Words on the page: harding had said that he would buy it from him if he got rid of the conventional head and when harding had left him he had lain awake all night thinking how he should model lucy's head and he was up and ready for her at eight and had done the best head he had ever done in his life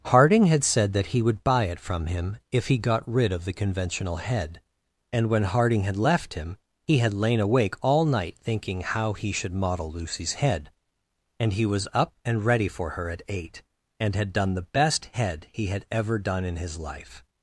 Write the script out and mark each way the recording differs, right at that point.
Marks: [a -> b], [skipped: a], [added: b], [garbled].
harding had said that he would buy it from him if he got rid of the conventional head and when harding had left him he had lain awake all night thinking how he should model lucy's head and he was up and ready for her at eight and had done the best head he had ever done in his life